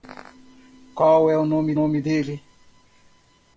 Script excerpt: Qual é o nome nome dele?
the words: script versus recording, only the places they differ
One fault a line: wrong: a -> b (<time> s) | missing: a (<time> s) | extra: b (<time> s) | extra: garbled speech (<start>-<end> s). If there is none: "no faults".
no faults